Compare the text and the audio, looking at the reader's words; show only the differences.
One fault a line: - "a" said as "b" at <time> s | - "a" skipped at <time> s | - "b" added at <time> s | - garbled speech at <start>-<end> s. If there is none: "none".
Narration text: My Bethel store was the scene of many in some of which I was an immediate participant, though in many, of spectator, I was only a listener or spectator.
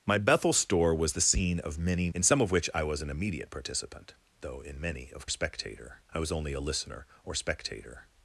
none